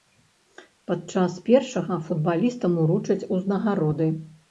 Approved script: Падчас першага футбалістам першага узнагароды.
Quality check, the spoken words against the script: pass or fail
fail